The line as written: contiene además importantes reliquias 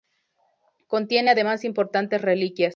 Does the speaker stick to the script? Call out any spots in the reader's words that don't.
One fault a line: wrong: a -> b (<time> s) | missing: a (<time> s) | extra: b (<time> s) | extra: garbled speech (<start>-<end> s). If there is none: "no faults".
no faults